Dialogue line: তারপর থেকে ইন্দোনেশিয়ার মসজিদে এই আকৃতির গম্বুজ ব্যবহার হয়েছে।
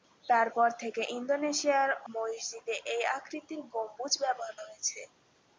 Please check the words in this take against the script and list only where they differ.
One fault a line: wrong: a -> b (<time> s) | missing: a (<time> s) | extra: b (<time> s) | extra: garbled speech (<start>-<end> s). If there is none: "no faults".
no faults